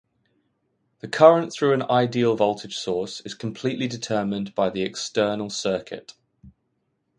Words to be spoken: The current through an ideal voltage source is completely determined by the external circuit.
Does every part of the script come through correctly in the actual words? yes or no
yes